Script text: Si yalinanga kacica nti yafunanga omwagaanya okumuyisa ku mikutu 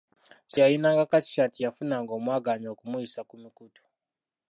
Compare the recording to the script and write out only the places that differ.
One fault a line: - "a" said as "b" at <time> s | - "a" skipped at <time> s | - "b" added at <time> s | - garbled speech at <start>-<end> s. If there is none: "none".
none